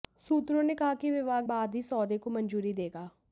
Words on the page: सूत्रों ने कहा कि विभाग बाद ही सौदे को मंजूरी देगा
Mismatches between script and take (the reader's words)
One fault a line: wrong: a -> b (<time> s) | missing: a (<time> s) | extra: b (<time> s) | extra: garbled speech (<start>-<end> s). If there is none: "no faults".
no faults